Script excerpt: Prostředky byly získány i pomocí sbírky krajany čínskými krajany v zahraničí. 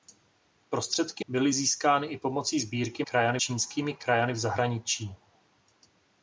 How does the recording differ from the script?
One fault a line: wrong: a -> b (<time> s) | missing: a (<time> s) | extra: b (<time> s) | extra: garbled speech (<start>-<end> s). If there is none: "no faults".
no faults